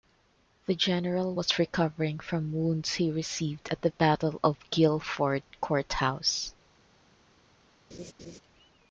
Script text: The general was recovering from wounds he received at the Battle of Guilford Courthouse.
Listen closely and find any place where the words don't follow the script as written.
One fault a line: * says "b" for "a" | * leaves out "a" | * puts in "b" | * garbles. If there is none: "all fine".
all fine